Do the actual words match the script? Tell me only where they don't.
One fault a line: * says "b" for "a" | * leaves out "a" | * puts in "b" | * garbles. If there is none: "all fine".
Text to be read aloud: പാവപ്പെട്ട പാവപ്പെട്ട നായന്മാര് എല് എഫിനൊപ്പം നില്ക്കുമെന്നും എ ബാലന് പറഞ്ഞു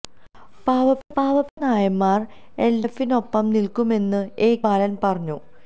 all fine